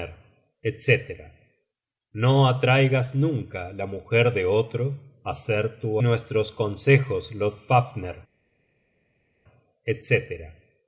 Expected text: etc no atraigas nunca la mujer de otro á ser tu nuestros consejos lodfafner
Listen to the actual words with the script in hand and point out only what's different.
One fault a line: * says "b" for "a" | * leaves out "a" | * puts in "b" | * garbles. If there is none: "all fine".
all fine